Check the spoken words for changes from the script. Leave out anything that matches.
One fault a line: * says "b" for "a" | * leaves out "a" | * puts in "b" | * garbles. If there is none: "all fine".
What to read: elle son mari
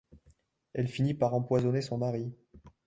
* puts in "finit par empoisonner"